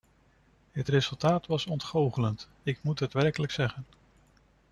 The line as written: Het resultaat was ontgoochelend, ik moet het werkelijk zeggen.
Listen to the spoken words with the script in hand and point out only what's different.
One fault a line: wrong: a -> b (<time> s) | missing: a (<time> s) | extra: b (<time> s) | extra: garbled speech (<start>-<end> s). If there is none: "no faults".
no faults